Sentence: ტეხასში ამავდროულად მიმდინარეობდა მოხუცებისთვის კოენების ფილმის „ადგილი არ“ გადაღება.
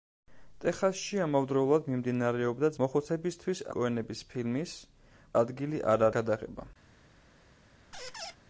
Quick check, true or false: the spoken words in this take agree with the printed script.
true